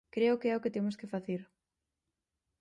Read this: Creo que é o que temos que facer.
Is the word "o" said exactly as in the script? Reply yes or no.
yes